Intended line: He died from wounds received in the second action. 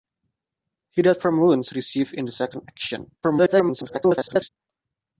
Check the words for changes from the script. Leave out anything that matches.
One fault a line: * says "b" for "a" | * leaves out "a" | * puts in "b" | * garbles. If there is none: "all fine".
* garbles